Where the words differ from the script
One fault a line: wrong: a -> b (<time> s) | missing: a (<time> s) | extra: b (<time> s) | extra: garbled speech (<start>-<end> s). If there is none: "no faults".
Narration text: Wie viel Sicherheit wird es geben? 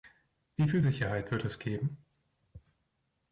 no faults